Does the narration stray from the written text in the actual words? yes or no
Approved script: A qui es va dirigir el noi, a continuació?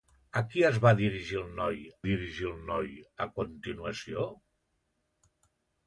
yes